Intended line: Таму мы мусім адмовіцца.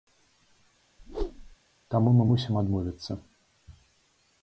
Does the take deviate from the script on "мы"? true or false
false